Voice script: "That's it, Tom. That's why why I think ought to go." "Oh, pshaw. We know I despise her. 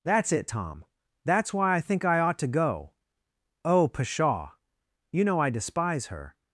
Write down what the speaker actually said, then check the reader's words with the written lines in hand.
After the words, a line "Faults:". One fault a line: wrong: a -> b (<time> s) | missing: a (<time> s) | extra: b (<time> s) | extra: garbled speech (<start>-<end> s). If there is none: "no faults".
"That's it, Tom. That's why I think I ought to go." "Oh, pshaw. You know I despise her.
Faults:
missing: why (1.8 s)
extra: I (2.0 s)
wrong: We -> You (5.1 s)